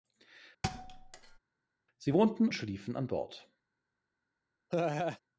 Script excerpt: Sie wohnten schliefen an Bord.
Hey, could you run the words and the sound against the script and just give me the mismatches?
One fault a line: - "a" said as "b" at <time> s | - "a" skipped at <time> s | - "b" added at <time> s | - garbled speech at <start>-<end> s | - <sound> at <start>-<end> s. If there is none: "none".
- thud at 0.6-1.4 s
- laugh at 4.7-5.2 s